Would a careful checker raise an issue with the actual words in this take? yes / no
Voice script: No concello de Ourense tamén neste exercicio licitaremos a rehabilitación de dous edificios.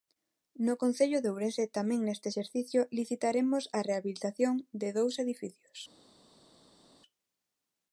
no